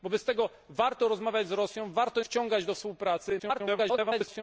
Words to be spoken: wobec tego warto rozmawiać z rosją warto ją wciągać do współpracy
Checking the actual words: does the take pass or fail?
fail